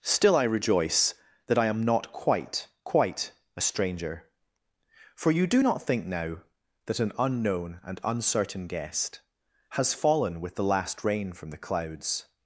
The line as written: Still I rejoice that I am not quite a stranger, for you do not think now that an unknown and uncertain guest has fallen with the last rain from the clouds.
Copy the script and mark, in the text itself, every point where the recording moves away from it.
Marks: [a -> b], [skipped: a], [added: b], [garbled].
Still I rejoice that I am not quite [added: quite] a stranger, for you do not think now that an unknown and uncertain guest has fallen with the last rain from the clouds.